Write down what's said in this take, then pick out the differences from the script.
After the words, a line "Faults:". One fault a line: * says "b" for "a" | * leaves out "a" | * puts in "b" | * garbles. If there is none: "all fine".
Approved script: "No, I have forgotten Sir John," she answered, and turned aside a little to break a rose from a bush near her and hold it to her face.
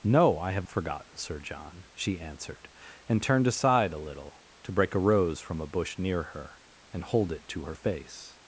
"No, I have forgotten Sir John," she answered, and turned aside a little to break a rose from a bush near her and hold it to her face.
Faults:
all fine